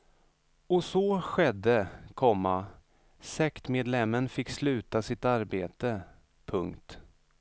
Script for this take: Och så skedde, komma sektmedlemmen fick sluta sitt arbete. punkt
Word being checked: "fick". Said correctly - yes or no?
yes